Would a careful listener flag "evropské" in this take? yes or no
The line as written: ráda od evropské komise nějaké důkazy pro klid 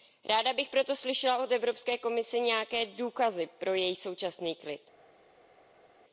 no